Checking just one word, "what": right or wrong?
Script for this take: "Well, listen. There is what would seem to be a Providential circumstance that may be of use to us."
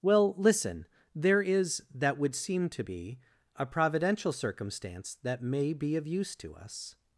wrong